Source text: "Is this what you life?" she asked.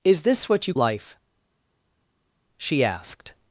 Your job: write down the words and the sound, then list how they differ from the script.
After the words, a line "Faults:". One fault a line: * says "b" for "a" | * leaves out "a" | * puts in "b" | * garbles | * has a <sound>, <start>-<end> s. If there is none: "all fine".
"Is this what you life?" she asked.
Faults:
all fine